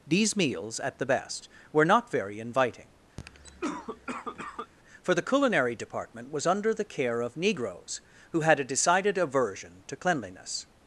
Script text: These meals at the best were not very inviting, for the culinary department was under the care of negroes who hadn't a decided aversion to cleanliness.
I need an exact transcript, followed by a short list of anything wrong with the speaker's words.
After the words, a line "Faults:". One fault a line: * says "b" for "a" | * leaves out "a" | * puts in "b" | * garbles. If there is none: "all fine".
These meals at the best were not very inviting, for the culinary department was under the care of negroes who had a decided aversion to cleanliness.
Faults:
* says "had" for "hadn't"